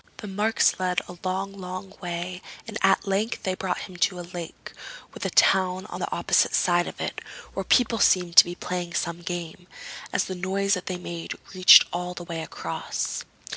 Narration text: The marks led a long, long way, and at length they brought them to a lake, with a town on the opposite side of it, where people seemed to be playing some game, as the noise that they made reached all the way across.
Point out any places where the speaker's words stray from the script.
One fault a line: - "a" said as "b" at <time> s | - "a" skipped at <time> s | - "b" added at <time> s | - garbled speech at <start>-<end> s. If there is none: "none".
- "them" said as "him" at 3.8 s